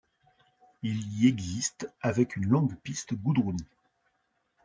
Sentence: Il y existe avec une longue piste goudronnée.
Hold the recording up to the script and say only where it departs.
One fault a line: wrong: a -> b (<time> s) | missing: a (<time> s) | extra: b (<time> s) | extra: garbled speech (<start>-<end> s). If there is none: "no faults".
no faults